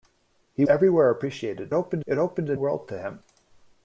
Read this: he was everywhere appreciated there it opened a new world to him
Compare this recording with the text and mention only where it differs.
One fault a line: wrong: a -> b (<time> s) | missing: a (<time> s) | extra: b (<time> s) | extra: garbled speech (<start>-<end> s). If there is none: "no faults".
missing: was (0.7 s)
wrong: there -> opened (1.7 s)
missing: new (2.6 s)